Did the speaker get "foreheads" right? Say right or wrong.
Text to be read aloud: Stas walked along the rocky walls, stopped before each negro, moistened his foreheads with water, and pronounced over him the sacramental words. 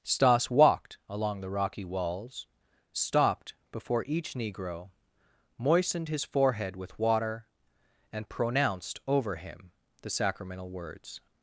wrong